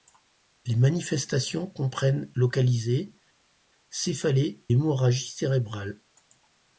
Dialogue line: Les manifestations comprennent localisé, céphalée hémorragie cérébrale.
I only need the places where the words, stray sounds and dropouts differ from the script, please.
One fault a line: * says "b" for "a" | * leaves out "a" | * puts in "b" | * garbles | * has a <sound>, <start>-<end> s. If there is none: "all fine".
all fine